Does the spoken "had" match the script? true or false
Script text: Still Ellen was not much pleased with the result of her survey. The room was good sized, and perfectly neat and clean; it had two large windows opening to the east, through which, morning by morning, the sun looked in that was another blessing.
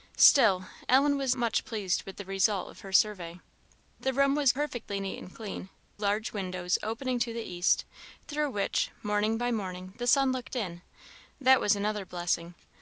false